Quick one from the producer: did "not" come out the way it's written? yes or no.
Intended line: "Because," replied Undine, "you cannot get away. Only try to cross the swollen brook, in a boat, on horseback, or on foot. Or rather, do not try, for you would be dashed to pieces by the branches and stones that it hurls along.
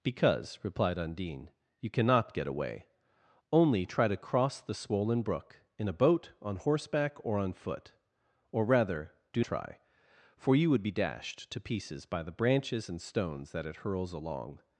no